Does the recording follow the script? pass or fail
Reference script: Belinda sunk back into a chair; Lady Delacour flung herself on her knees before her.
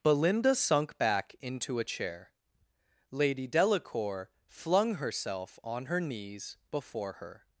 pass